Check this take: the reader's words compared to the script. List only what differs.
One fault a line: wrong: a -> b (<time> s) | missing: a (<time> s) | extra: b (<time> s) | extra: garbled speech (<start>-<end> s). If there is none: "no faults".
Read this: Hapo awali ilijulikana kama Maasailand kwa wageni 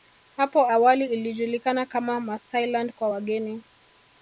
no faults